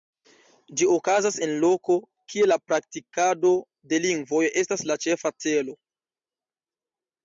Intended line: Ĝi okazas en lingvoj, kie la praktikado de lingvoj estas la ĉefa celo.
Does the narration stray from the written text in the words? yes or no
yes